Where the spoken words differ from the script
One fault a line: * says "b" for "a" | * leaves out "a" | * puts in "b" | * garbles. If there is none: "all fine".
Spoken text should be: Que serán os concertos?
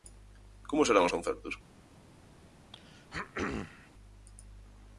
* says "Como" for "Que"